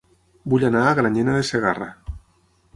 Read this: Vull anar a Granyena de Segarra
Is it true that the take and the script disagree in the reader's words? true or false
false